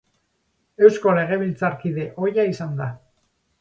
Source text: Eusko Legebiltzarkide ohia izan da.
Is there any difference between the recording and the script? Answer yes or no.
no